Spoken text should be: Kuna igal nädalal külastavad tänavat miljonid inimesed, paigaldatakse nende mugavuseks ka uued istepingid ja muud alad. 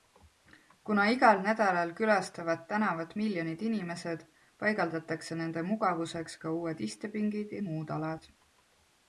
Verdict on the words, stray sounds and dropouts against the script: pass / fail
pass